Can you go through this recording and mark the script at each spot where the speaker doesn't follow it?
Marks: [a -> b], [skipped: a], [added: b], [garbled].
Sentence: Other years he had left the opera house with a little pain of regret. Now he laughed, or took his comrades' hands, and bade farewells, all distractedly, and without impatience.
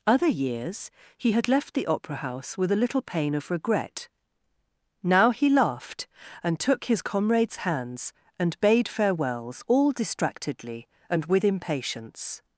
Other years he had left the opera house with a little pain of regret. Now he laughed, [or -> and] took his comrades' hands, and bade farewells, all distractedly, and [without -> with] impatience.